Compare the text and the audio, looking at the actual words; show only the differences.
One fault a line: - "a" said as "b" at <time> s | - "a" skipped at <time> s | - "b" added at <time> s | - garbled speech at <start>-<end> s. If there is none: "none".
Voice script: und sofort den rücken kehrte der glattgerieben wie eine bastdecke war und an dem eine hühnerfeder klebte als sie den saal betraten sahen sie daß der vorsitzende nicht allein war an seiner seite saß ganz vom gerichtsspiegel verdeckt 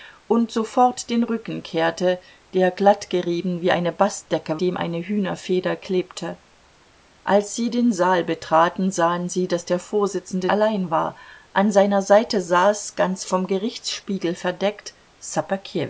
- "war und an" skipped at 4.6 s
- "nicht" skipped at 10.5 s